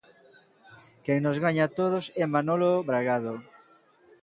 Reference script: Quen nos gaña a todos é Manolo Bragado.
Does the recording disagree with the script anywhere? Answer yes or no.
no